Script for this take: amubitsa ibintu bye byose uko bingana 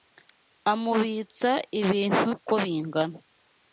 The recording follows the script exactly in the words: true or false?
false